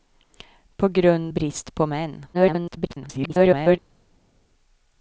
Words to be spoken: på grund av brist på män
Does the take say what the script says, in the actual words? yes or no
no